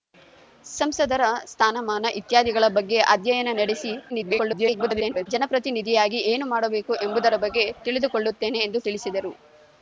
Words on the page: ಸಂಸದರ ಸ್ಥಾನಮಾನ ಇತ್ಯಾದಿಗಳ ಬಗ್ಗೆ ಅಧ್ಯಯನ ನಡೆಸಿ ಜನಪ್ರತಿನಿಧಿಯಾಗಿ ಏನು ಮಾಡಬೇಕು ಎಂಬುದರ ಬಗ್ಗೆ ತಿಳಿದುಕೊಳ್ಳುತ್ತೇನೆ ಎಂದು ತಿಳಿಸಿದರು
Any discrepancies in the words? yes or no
yes